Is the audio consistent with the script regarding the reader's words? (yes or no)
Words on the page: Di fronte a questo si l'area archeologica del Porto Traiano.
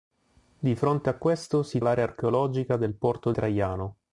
yes